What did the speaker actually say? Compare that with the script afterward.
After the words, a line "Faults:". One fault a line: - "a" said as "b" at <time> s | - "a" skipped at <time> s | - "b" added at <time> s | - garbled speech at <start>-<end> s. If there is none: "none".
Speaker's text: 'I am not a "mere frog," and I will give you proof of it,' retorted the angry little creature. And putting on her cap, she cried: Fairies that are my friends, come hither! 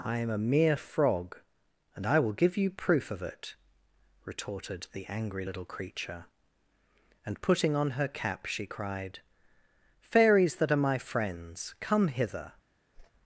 'I am a "mere frog," and I will give you proof of it,' retorted the angry little creature. And putting on her cap, she cried: Fairies that are my friends, come hither!
Faults:
- "not" skipped at 0.3 s